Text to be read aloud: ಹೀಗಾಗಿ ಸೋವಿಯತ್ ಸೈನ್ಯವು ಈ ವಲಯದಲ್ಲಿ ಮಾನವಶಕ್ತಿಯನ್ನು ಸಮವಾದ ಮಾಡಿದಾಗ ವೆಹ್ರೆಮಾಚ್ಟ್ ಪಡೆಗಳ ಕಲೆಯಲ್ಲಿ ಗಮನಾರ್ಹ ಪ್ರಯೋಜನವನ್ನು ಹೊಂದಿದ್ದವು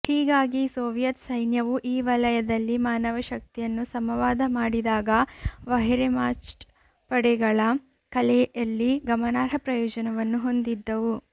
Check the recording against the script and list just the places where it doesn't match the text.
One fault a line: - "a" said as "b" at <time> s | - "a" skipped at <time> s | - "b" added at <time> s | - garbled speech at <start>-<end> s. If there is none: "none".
none